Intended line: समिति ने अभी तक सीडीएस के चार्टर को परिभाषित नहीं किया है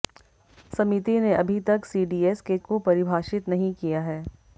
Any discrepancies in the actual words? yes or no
yes